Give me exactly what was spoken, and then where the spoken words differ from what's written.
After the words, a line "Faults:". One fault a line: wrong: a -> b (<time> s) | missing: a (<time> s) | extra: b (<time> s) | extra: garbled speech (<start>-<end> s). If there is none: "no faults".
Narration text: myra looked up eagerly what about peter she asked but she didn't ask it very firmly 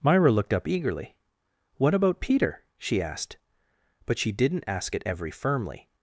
myra looked up eagerly what about peter she asked but she didn't ask it every firmly
Faults:
wrong: very -> every (5.0 s)